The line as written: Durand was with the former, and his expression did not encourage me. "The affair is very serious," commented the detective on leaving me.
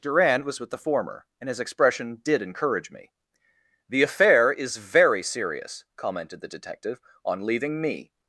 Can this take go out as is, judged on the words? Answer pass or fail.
fail